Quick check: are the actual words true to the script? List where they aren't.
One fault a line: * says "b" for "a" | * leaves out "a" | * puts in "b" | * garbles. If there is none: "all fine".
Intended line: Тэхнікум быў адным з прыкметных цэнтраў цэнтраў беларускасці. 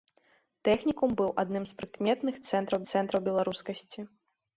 all fine